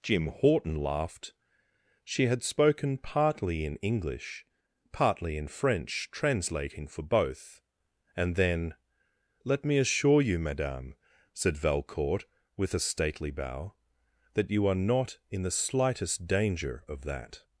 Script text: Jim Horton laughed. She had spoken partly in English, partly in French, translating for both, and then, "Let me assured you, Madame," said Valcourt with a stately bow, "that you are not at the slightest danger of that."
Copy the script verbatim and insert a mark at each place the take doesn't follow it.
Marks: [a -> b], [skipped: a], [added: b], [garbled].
Jim Horton laughed. She had spoken partly in English, partly in French, translating for both, and then, "Let me [assured -> assure] you, Madame," said Valcourt with a stately bow, "that you are not [at -> in] the slightest danger of that."